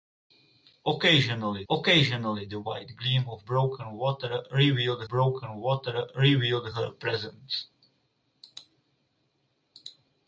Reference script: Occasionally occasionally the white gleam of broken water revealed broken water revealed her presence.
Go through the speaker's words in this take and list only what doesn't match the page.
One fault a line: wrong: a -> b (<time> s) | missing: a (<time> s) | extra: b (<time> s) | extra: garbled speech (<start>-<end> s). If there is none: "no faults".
no faults